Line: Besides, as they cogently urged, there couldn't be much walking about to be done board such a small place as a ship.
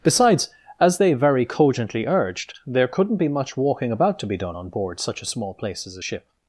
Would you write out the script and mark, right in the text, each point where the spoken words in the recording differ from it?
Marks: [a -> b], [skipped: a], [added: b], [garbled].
Besides, as they [added: very] cogently urged, there couldn't be much walking about to be done [added: on] board such a small place as a ship.